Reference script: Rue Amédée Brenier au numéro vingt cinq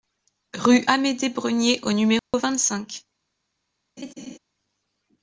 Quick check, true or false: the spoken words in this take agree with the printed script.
true